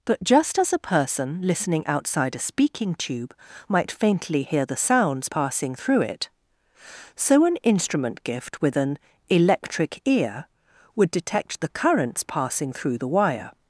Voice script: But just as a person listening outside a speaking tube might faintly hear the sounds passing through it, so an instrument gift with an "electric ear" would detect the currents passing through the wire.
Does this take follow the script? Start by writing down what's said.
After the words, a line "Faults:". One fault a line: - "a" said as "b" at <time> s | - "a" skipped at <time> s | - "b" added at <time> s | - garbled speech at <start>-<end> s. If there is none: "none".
But just as a person listening outside a speaking tube might faintly hear the sounds passing through it, so an instrument gift with an "electric ear" would detect the currents passing through the wire.
Faults:
none